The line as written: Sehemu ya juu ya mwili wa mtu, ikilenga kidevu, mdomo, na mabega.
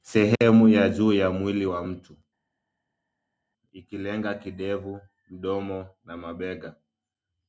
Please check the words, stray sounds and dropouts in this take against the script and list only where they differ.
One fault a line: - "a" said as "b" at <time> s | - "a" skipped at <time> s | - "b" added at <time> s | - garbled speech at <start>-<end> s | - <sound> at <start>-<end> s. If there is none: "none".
none